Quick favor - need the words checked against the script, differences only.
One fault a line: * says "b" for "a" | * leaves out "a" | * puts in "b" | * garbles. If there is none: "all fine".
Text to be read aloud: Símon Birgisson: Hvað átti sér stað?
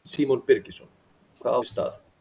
* leaves out "átti"